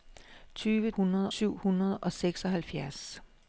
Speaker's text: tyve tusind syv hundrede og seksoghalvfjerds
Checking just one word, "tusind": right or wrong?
wrong